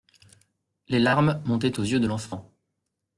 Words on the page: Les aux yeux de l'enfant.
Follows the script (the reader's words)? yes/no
no